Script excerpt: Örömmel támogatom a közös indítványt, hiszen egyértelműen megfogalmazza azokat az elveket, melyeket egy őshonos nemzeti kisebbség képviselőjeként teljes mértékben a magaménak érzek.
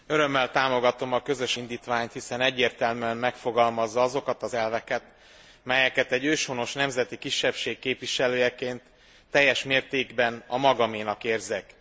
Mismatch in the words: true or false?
false